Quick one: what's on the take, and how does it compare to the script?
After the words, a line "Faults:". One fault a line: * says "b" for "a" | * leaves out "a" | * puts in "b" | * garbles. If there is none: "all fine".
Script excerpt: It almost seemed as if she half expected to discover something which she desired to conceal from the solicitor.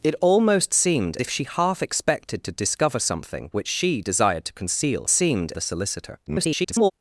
It almost seemed if she half expected to discover something which she desired to conceal seemed the solicitor. [garbled]
Faults:
* leaves out "as"
* says "seemed" for "from"
* garbles